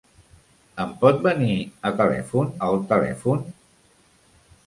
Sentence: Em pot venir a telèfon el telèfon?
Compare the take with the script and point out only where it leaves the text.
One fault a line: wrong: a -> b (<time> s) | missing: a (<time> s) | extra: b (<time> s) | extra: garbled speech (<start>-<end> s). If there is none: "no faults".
no faults